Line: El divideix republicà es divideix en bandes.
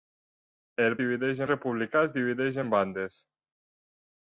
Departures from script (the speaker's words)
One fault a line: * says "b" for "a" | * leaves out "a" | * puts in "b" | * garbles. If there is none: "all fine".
all fine